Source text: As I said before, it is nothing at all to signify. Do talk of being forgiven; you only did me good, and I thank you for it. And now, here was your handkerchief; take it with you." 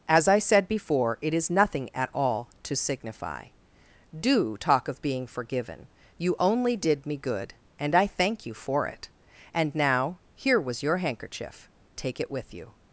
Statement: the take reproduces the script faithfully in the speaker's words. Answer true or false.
true